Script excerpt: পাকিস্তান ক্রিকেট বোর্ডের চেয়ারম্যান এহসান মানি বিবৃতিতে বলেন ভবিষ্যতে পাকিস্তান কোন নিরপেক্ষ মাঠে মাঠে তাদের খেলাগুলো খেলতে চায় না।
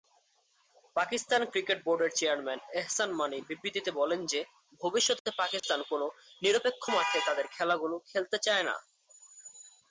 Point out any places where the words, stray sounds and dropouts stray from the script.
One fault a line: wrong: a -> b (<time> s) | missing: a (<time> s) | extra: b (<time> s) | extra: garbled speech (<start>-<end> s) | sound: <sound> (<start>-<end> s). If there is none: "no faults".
extra: যে (4.2 s)
sound: dropout (5.6-5.6 s)
missing: মাঠে (7.2 s)